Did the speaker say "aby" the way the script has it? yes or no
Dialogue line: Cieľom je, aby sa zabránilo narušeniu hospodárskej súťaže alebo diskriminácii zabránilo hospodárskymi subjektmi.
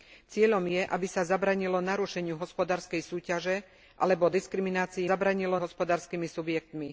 yes